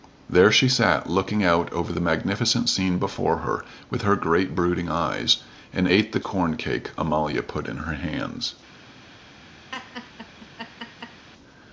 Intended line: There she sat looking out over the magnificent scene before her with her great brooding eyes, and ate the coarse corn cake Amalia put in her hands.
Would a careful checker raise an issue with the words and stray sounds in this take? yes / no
yes